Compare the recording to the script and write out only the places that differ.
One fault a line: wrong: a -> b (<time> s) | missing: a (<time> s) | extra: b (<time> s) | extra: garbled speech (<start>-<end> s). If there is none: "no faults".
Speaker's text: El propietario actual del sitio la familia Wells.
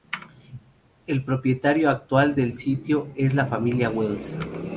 extra: es (3.1 s)